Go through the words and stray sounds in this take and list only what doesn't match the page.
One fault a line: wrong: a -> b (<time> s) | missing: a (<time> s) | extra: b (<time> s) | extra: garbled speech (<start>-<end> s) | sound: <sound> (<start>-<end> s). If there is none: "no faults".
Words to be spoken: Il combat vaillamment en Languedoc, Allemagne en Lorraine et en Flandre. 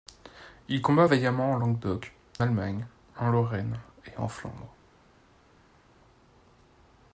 no faults